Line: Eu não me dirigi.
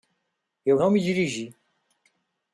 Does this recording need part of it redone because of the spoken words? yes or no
no